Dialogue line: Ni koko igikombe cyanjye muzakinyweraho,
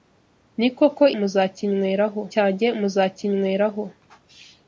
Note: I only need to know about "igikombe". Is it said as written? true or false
false